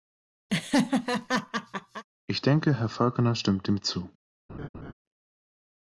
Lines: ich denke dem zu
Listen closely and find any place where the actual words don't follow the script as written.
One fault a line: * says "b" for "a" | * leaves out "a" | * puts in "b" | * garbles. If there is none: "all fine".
* puts in "herr falconer stimmt"